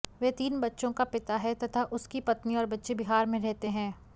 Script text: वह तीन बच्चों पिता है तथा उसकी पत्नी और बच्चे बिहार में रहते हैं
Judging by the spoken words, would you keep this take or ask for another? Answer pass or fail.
fail